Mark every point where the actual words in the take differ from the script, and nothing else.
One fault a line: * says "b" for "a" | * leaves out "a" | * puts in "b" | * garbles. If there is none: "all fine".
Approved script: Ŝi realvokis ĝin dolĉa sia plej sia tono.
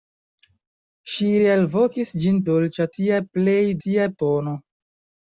all fine